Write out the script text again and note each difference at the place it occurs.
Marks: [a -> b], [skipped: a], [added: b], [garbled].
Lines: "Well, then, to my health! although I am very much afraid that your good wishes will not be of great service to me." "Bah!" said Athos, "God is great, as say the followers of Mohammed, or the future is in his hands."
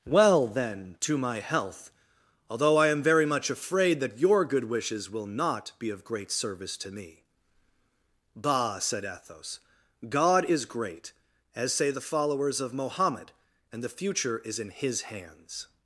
"Well, then, to my health! although I am very much afraid that your good wishes will not be of great service to me." "Bah!" said Athos, "God is great, as say the followers of Mohammed, [or -> and] the future is in his hands."